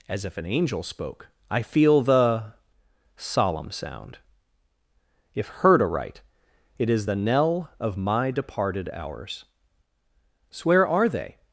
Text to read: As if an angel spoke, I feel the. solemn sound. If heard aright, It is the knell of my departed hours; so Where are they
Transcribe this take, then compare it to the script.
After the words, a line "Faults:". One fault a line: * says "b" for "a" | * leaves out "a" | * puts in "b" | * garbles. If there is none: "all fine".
As if an angel spoke, I feel the. solemn sound. If heard aright, It is the knell of my departed hours; so Where are they
Faults:
all fine